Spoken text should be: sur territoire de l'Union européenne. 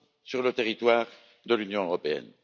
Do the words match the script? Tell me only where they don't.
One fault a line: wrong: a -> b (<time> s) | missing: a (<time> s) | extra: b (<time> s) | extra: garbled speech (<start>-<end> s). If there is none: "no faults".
extra: le (0.4 s)